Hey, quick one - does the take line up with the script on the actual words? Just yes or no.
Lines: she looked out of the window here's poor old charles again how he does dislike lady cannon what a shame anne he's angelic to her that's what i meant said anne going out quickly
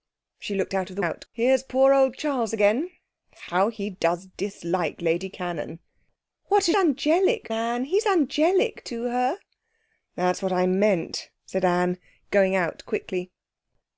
no